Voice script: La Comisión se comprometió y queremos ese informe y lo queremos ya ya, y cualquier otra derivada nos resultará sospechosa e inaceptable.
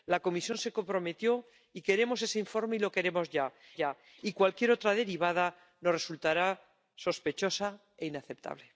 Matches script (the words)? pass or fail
pass